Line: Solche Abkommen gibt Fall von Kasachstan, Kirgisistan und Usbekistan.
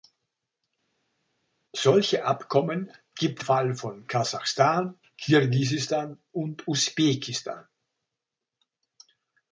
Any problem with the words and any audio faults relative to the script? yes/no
no